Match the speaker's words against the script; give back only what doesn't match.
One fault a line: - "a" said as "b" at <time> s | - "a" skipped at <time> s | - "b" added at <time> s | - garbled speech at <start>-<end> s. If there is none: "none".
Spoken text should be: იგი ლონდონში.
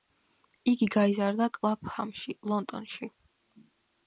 - "გაიზარდა კლაფჰამში" added at 0.9 s